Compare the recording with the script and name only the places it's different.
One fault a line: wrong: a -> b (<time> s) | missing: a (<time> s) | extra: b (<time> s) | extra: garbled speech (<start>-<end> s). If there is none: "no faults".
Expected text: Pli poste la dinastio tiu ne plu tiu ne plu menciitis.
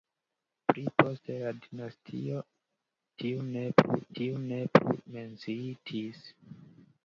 no faults